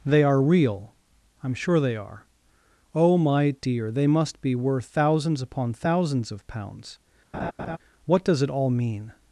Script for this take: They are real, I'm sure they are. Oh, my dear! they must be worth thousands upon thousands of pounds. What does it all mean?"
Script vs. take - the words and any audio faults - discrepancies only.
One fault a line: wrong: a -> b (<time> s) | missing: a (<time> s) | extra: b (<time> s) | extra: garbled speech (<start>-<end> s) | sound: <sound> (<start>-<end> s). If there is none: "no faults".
sound: laugh (7.3-7.8 s)